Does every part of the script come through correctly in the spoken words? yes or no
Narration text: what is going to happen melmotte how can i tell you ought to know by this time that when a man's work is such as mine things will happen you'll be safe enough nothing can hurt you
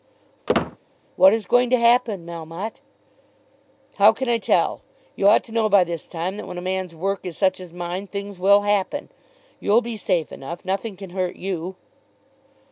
yes